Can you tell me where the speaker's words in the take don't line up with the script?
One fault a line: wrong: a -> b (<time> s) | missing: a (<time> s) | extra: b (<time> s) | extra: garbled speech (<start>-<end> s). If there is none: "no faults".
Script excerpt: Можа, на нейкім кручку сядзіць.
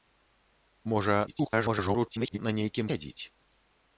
extra: garbled speech (1.3-2.4 s)
missing: кручку (2.9 s)